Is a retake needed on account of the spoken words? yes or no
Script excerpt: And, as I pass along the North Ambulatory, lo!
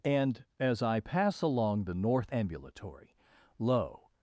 no